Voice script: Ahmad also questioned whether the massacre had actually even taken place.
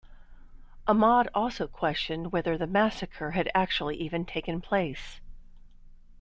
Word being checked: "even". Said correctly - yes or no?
yes